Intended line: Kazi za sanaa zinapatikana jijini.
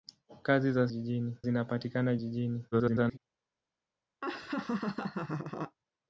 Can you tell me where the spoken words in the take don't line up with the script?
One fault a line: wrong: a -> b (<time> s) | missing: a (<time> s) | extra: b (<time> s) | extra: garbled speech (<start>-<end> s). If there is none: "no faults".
wrong: sanaa -> jijini (0.9 s)
extra: garbled speech (2.7-3.2 s)